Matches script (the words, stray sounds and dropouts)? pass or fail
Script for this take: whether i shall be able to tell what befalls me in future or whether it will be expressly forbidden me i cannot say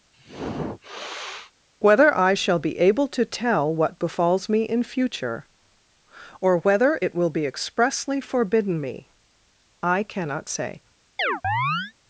fail